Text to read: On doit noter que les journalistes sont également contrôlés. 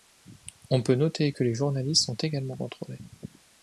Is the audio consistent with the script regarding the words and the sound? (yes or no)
no